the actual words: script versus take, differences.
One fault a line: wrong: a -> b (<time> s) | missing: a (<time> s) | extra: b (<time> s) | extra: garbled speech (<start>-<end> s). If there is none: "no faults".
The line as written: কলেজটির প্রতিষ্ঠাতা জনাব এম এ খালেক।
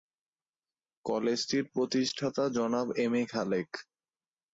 no faults